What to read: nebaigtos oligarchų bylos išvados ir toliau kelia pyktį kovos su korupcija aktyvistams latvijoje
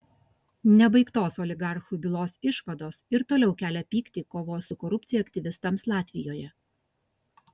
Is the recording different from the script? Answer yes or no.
no